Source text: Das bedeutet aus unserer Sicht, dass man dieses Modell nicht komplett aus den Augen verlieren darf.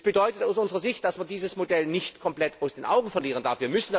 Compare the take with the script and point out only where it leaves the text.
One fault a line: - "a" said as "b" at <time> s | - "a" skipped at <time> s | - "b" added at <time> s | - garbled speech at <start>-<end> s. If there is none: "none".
none